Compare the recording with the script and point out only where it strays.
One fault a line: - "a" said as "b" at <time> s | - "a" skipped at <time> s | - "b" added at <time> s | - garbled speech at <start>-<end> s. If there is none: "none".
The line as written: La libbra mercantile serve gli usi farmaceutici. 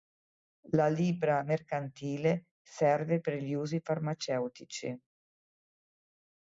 - "per" added at 3.2 s